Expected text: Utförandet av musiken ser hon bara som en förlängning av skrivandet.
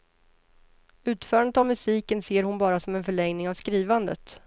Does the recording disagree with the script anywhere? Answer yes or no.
no